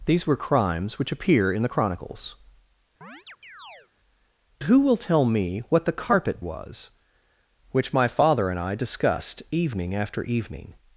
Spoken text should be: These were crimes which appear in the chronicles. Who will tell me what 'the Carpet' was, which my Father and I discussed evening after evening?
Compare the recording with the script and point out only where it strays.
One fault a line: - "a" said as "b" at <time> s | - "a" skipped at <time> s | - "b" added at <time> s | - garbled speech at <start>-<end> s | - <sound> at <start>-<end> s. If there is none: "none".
- chirp at 3.0-3.9 s